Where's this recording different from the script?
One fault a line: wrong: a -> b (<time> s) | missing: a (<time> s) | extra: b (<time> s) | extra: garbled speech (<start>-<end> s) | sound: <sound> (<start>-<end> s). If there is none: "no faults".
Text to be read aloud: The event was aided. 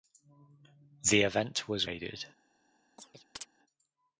sound: chirp (3.0-3.5 s)